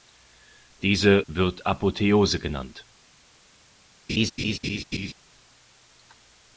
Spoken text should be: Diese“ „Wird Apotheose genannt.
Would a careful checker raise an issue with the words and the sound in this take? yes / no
yes